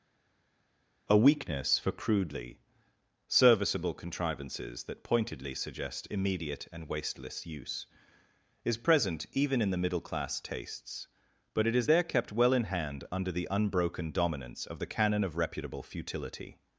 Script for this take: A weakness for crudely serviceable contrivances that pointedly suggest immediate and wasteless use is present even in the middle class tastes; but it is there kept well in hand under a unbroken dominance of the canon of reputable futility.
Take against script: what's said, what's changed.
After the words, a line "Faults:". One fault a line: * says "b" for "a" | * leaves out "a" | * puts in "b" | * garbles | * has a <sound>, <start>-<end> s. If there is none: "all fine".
A weakness for crudely serviceable contrivances that pointedly suggest immediate and wasteless use is present even in the middle class tastes; but it is there kept well in hand under the unbroken dominance of the canon of reputable futility.
Faults:
* says "the" for "a"